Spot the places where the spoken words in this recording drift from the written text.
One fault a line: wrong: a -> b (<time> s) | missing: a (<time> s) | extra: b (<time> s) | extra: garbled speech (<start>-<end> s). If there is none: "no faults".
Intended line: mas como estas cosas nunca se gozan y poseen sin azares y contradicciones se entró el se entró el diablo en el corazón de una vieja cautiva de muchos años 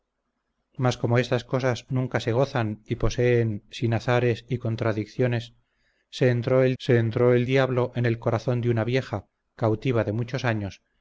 no faults